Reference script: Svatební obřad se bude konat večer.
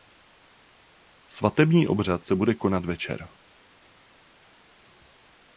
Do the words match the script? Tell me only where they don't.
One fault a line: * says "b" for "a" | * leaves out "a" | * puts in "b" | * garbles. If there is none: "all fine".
all fine